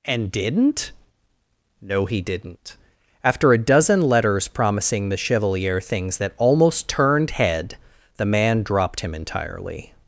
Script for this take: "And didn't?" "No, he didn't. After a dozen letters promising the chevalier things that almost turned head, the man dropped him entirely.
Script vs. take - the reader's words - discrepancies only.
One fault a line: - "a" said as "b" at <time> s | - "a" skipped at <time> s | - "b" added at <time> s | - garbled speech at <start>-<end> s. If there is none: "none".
none